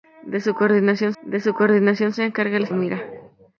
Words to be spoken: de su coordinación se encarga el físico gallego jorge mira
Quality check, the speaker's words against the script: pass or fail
fail